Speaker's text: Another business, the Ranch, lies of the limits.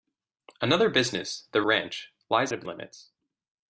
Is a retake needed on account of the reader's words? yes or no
no